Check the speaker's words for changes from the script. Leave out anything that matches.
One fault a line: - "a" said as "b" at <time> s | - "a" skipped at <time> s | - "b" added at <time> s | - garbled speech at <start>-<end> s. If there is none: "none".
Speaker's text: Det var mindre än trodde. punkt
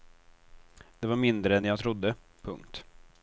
- "jag" added at 1.6 s